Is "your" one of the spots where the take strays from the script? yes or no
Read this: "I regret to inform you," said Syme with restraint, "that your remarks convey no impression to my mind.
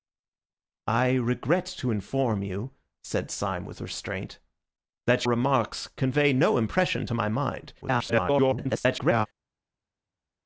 yes